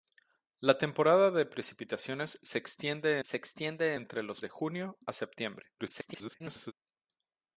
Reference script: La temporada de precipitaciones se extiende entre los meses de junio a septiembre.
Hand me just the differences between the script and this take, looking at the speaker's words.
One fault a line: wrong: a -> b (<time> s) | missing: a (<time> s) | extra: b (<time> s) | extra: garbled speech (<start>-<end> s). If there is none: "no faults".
extra: se extiende (3.2 s)
missing: meses (4.4 s)
extra: garbled speech (5.8-6.7 s)